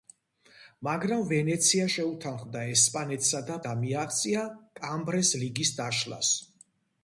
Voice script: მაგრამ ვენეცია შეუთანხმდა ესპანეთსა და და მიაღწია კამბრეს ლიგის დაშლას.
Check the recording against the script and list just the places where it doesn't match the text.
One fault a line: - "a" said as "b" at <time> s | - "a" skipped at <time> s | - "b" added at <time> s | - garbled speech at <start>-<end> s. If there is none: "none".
none